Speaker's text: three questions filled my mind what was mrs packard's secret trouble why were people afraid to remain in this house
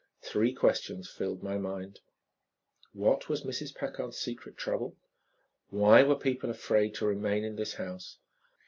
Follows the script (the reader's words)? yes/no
yes